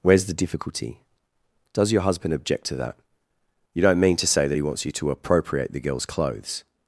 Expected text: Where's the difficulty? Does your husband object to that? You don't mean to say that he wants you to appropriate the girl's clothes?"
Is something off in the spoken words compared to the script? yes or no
no